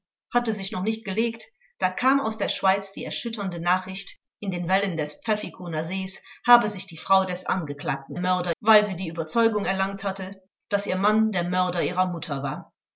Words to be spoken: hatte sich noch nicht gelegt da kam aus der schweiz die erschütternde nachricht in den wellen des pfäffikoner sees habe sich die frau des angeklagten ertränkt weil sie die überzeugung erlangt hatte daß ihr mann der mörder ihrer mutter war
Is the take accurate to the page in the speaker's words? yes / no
no